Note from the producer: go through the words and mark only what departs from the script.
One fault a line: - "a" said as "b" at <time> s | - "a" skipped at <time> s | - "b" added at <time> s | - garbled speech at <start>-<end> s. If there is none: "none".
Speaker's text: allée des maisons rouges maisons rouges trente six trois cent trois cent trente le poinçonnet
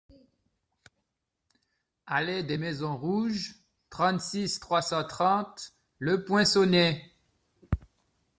- "maisons rouges" skipped at 3.6 s
- "trois cent" skipped at 5.0 s